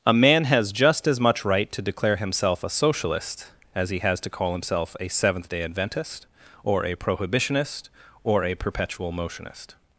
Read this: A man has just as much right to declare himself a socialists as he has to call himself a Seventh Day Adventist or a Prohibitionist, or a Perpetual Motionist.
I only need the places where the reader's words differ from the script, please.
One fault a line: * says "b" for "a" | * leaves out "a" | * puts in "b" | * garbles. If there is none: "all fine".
* says "socialist" for "socialists"